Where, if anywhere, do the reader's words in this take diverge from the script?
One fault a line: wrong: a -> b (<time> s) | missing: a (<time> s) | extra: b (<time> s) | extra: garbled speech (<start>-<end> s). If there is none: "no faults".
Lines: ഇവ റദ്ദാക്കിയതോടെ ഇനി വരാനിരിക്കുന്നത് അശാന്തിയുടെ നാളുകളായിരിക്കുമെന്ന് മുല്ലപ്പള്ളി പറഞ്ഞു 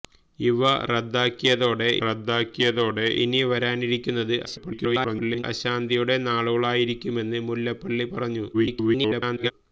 extra: റദ്ദാക്കിയതോടെ (2.0 s)
extra: garbled speech (4.4-5.4 s)
extra: garbled speech (8.5-9.5 s)